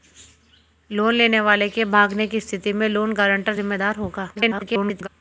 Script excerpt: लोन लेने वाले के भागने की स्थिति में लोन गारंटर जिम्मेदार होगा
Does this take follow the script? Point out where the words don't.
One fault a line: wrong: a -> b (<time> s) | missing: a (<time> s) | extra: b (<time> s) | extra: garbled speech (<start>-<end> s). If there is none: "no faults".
extra: garbled speech (4.4-5.1 s)